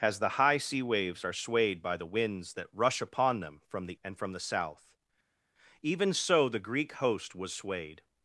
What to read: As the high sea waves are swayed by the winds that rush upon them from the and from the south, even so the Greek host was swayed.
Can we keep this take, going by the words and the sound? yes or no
yes